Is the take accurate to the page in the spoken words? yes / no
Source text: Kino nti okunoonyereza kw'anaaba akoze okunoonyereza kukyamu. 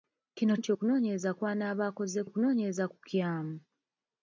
yes